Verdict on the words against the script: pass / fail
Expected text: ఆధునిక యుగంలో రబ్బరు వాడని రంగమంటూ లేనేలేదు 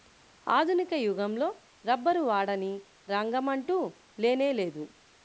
pass